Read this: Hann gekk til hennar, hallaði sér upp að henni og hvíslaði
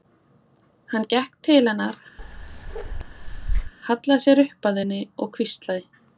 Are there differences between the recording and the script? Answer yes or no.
no